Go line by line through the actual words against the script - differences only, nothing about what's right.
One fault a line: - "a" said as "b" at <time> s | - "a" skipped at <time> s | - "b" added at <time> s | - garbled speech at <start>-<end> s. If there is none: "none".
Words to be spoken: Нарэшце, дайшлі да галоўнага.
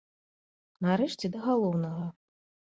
- "дайшлі" skipped at 1.2 s